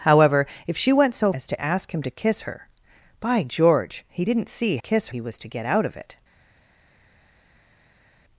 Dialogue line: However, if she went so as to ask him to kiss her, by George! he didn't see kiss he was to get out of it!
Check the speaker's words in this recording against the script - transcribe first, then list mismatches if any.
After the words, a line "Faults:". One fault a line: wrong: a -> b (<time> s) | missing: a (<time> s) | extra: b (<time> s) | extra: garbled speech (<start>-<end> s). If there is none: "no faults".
However, if she went so as to ask him to kiss her, by George! he didn't see kiss he was to get out of it!
Faults:
no faults